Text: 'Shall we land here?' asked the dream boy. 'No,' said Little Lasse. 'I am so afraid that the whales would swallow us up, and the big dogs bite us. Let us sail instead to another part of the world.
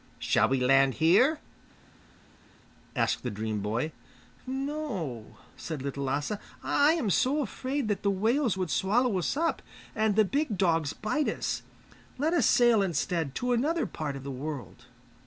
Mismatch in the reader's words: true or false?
false